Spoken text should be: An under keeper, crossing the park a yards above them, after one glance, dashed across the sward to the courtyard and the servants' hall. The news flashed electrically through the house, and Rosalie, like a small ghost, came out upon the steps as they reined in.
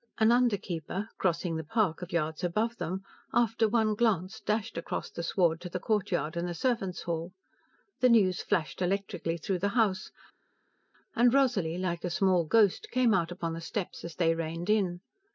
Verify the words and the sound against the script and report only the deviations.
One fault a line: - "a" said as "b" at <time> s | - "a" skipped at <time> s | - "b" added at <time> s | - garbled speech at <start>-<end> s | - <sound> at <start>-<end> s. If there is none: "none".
none